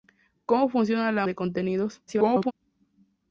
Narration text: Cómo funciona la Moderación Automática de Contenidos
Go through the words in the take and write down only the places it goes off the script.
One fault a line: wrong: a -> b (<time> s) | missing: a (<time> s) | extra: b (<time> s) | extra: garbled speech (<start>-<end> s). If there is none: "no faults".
missing: Moderación Automática (1.3 s)
extra: garbled speech (2.1-2.5 s)